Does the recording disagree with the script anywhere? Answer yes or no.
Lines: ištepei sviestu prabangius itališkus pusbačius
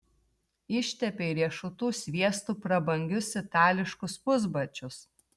yes